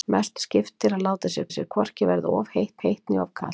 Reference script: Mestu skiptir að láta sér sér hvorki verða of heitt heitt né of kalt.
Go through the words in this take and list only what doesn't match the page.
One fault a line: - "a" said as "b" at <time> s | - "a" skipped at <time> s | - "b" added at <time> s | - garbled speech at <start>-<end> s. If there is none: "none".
none